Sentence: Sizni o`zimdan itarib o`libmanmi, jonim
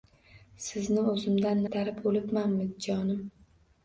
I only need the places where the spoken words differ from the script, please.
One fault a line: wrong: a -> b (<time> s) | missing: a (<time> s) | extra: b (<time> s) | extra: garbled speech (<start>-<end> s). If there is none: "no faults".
no faults